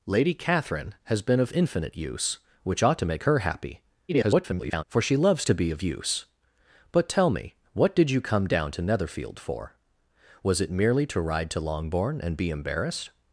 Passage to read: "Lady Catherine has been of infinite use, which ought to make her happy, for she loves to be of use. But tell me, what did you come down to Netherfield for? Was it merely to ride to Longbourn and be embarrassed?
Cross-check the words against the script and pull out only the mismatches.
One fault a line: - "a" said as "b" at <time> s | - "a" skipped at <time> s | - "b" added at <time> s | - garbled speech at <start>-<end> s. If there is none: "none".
- garbled speech at 4.1-4.8 s